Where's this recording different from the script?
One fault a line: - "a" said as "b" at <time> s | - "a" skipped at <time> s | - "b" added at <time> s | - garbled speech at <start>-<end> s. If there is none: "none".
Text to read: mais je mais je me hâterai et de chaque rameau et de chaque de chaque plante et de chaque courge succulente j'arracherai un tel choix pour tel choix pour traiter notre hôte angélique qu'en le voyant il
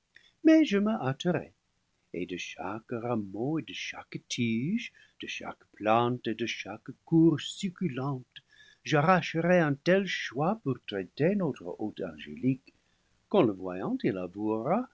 - "mais je" skipped at 0.8 s
- "tige" added at 4.3 s
- "tel choix pour" skipped at 10.8 s